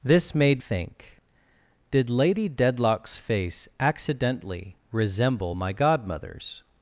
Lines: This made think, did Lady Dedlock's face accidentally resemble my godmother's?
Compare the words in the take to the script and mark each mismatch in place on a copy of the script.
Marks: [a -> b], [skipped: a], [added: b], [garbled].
This made think, did Lady Dedlock's face accidentally resemble my godmother's?